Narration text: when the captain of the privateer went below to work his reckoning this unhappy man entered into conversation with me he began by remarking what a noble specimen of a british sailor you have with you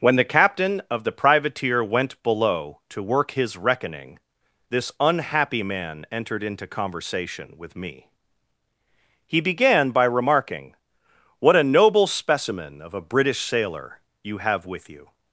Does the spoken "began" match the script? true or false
true